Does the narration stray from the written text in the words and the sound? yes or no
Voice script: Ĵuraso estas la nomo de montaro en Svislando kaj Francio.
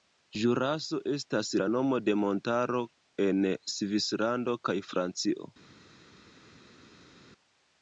no